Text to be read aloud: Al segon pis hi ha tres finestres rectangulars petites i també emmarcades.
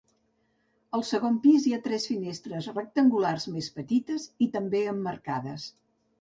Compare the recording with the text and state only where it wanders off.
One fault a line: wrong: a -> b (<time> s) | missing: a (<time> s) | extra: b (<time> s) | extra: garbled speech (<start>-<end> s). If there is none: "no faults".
extra: més (3.6 s)